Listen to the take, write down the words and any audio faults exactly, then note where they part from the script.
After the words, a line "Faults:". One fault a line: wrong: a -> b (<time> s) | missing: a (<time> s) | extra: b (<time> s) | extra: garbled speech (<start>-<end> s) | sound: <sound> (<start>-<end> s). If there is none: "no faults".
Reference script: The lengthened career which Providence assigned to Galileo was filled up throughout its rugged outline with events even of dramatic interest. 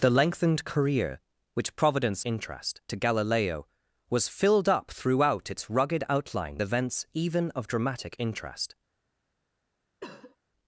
The lengthened career which Providence interest to Galileo was filled up throughout its rugged outline events even of dramatic interest.
Faults:
wrong: assigned -> interest (2.3 s)
missing: with (6.6 s)
sound: cough (10.0-10.4 s)